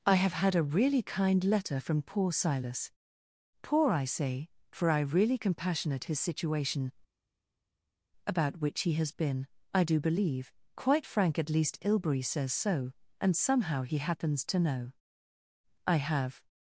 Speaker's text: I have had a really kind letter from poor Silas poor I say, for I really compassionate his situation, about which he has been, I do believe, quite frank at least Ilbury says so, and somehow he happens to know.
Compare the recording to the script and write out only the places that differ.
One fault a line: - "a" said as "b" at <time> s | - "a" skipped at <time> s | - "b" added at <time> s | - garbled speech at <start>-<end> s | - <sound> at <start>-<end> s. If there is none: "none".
- "I have" added at 15.9 s